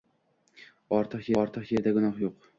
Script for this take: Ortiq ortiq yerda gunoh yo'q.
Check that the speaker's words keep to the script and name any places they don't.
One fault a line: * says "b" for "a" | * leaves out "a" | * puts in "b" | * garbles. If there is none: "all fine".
all fine